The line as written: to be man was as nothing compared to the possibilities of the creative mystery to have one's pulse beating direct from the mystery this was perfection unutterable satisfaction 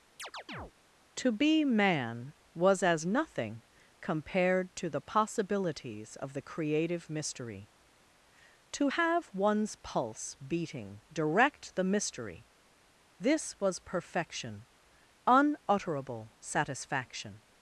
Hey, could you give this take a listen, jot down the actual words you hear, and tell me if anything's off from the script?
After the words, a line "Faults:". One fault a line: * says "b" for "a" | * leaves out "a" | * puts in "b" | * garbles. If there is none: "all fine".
to be man was as nothing compared to the possibilities of the creative mystery to have one's pulse beating direct the mystery this was perfection unutterable satisfaction
Faults:
* leaves out "from"